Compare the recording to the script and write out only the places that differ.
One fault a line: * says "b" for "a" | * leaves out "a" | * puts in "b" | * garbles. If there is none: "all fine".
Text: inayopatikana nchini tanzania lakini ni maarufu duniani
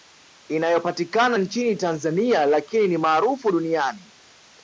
all fine